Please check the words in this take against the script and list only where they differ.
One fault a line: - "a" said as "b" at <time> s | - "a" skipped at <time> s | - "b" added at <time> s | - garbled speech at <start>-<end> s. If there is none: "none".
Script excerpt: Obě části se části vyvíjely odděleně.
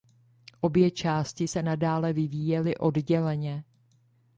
- "části" said as "nadále" at 1.6 s